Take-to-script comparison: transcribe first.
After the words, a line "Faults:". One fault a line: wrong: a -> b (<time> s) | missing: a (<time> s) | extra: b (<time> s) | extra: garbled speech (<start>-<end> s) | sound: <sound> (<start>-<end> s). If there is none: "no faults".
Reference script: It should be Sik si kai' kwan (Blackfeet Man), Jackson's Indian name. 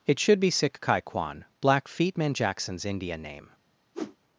It should be Sik kai' kwan (Blackfeet Man), Jackson's Indian name.
Faults:
missing: si (0.8 s)
sound: whoosh (3.9-4.2 s)